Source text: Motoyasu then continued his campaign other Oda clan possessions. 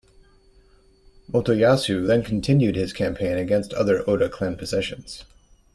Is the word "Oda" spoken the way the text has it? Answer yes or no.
yes